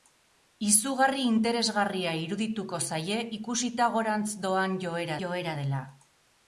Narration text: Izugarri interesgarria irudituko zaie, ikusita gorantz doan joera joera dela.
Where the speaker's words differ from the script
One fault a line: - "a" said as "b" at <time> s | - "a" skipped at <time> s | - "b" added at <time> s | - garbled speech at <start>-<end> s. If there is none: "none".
none